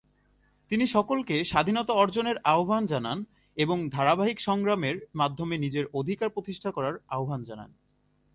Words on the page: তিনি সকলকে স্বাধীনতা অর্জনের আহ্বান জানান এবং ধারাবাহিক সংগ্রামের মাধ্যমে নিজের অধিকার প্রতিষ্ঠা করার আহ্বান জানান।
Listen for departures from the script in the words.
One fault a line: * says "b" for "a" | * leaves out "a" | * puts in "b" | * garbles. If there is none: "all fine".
all fine